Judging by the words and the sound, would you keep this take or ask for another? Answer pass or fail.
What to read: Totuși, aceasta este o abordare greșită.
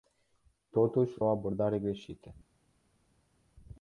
fail